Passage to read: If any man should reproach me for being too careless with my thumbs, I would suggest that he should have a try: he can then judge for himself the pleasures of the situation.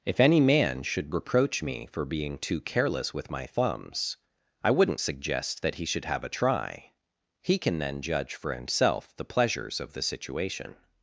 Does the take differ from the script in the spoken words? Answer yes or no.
yes